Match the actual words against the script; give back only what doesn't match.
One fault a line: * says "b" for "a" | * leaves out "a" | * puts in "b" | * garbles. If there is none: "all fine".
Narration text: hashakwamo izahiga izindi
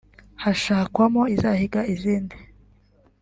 all fine